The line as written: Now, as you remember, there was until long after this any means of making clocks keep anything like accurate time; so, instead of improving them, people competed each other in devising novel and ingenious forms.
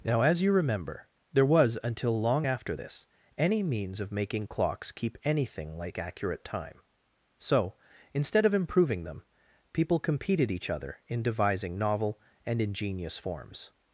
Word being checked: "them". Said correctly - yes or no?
yes